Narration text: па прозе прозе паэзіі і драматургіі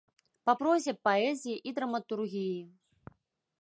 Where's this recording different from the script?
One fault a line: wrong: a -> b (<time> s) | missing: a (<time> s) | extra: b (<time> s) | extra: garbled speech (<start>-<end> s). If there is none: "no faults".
missing: прозе (0.9 s)